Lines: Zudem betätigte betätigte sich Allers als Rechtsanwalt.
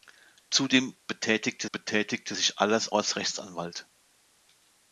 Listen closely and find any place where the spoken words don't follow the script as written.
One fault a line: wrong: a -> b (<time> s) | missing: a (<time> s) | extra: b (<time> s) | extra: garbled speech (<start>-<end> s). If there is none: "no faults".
no faults